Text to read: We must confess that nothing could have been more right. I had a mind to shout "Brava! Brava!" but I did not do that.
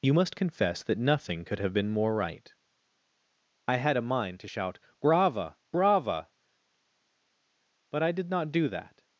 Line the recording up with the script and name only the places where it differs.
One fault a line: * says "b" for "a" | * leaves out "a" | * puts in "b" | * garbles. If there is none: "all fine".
* says "You" for "We"